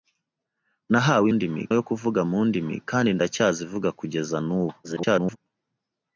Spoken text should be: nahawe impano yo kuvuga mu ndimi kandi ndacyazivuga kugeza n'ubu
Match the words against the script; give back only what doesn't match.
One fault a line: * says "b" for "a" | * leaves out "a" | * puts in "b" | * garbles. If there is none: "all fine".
* says "ndimi" for "impano"
* garbles